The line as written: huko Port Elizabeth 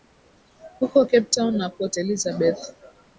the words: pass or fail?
fail